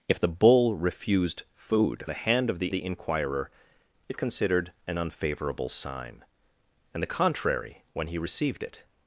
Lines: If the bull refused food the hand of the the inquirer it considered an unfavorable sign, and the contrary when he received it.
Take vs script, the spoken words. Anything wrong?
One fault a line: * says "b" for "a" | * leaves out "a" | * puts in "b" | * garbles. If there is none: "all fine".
all fine